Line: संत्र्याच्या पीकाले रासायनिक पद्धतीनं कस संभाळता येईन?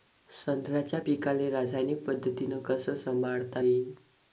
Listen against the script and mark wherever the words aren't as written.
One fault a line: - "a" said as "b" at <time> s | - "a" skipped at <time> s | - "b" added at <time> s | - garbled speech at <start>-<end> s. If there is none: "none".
none